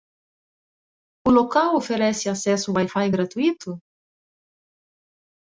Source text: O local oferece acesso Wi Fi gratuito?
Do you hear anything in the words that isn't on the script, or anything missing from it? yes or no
no